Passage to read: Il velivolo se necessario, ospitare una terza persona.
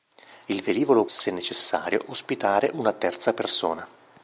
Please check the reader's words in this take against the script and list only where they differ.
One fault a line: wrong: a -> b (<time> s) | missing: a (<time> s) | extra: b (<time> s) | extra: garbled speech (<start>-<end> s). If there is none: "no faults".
no faults